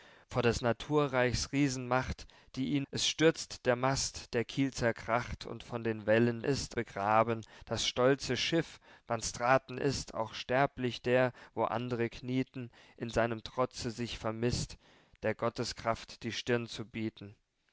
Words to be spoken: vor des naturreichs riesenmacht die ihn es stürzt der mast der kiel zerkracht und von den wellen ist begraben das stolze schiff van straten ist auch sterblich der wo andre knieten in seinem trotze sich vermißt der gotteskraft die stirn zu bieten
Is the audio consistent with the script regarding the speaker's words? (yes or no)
yes